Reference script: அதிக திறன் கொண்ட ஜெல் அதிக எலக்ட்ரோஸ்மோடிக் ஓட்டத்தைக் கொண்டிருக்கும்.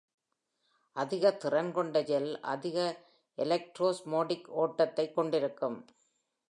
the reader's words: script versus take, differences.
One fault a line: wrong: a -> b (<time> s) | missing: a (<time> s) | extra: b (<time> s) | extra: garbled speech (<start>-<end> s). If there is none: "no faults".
no faults